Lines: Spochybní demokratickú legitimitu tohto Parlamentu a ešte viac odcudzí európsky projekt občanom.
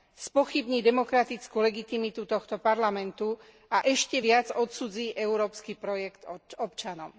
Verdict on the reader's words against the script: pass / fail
pass